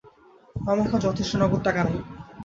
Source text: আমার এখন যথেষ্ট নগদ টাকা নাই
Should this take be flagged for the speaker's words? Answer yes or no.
no